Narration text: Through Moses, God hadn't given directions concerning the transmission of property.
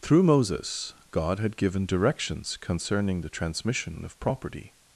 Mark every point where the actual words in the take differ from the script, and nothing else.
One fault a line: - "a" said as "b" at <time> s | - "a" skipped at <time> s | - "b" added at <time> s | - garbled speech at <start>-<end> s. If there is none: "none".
- "hadn't" said as "had" at 1.4 s